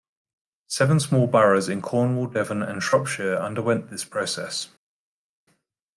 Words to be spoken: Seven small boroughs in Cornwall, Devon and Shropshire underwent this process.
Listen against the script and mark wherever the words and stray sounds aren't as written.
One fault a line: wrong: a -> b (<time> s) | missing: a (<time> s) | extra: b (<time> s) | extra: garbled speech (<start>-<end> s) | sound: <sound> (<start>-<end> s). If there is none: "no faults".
no faults